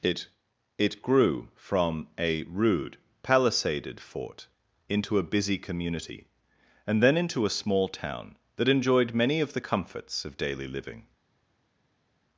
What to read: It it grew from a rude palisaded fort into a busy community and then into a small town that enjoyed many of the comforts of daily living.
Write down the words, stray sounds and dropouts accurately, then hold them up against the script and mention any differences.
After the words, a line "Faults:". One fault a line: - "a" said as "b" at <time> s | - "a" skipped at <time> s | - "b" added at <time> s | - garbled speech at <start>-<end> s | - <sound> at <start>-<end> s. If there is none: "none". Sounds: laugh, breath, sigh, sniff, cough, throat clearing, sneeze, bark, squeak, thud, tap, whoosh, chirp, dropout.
It it grew from a rude palisaded fort into a busy community and then into a small town that enjoyed many of the comforts of daily living.
Faults:
none